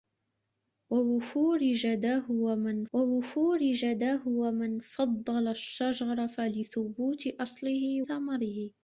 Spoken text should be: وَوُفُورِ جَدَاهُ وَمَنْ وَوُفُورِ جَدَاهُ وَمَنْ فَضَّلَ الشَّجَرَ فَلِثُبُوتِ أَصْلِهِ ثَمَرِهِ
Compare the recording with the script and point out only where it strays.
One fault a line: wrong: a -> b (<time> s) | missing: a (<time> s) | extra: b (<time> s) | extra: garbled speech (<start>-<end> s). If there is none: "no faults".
no faults